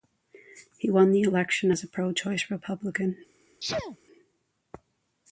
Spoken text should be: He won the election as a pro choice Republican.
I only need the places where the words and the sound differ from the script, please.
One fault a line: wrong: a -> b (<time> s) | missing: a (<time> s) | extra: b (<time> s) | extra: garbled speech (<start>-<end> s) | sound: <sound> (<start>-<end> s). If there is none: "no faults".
sound: sneeze (3.6-4.0 s)